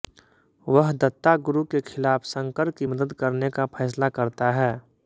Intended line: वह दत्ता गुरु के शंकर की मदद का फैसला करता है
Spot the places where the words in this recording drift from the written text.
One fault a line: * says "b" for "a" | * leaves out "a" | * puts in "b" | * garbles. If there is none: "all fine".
* puts in "खिलाफ"
* puts in "करने"